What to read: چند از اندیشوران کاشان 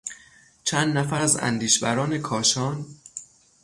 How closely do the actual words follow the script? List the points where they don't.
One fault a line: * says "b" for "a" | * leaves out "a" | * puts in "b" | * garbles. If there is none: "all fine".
* puts in "نفر"